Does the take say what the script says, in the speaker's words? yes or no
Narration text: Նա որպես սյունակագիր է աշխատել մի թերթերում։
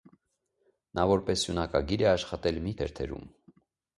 yes